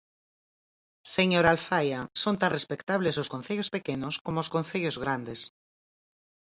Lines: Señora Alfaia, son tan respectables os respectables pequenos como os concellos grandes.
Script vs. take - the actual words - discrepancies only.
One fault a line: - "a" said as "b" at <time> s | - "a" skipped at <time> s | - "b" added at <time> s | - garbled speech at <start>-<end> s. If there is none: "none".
- "respectables" said as "concellos" at 3.3 s